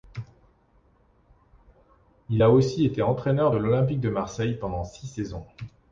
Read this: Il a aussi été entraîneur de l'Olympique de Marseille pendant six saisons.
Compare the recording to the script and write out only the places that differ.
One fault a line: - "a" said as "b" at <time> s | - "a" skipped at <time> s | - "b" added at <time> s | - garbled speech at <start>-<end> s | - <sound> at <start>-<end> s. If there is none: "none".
none